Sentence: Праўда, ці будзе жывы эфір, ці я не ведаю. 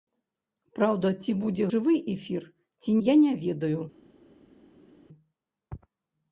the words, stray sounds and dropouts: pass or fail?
pass